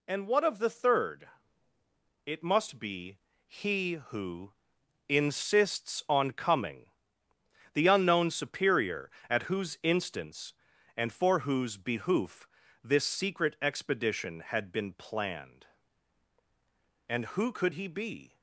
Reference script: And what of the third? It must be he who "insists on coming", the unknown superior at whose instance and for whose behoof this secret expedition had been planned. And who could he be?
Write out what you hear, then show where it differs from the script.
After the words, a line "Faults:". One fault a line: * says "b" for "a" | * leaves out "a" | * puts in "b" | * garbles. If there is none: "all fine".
And what of the third? It must be he who "insists on coming", the unknown superior at whose instance and for whose behoof this secret expedition had been planned. And who could he be?
Faults:
all fine